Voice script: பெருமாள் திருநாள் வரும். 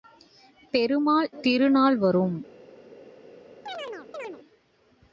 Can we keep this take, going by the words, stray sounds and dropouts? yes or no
no